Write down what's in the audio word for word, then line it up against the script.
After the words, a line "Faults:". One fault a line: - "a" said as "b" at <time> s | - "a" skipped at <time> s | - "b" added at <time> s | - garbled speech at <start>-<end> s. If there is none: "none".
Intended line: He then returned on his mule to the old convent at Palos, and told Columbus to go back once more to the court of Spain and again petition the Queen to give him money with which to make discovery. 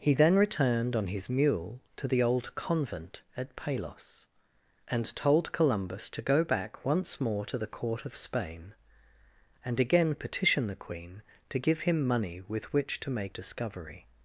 He then returned on his mule to the old convent at Palos, and told Columbus to go back once more to the court of Spain and again petition the Queen to give him money with which to make discovery.
Faults:
none